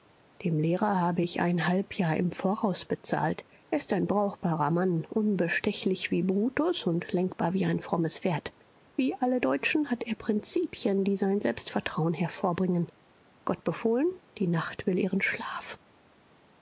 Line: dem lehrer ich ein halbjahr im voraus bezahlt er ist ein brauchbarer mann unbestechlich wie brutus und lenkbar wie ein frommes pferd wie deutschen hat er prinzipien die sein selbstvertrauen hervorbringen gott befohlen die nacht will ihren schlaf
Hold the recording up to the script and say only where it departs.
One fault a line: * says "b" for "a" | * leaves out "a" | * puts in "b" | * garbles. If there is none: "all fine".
* puts in "habe"
* puts in "alle"